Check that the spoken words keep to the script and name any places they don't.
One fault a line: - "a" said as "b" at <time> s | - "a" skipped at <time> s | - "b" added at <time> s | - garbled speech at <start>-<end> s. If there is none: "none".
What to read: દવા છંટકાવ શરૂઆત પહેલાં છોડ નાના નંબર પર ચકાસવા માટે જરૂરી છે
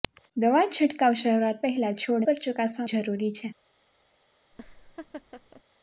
- "નાના નંબર" skipped at 2.3 s
- "માટે" skipped at 2.9 s